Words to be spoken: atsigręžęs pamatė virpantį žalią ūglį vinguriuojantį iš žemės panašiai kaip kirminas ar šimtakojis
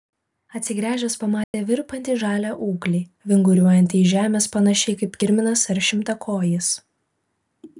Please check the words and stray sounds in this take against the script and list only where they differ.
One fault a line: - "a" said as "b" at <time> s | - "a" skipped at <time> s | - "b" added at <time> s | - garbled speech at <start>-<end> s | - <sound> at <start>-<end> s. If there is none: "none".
- dropout at 1.4-1.5 s